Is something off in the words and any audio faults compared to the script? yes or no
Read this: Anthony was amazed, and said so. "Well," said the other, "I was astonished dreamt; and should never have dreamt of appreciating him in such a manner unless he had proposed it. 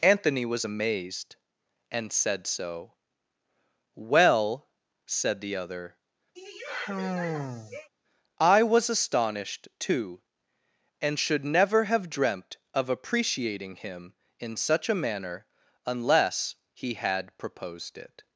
yes